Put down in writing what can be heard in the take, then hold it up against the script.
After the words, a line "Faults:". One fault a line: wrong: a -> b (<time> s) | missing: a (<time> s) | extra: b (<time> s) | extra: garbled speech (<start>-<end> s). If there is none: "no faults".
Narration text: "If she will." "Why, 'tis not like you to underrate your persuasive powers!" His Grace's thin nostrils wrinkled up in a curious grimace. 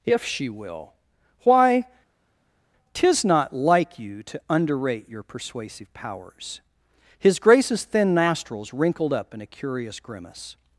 "If she will." "Why, 'tis not like you to underrate your persuasive powers!" His Grace's thin nostrils wrinkled up in a curious grimace.
Faults:
no faults